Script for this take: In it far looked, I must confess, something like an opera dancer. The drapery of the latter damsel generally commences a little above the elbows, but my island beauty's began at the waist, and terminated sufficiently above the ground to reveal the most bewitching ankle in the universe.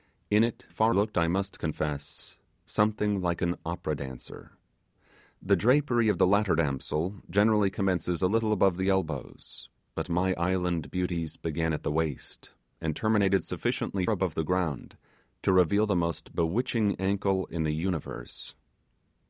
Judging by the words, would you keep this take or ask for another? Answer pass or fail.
pass